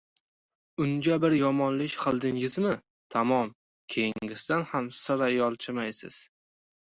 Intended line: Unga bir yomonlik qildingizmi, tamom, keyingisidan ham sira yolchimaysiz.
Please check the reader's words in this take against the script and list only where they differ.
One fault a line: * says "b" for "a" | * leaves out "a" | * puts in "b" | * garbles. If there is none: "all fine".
all fine